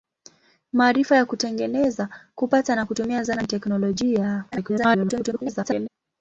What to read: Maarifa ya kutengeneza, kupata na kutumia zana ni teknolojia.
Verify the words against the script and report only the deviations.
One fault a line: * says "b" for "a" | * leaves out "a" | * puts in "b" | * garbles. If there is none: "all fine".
* garbles